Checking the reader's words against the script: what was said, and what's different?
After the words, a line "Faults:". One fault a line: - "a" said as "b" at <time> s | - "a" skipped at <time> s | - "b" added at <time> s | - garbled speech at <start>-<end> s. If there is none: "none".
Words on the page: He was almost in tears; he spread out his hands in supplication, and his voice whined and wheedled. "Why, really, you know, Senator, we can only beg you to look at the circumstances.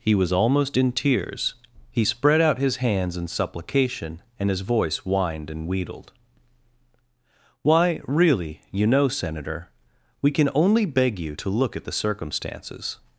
He was almost in tears; he spread out his hands in supplication, and his voice whined and wheedled. "Why, really, you know, Senator, we can only beg you to look at the circumstances.
Faults:
none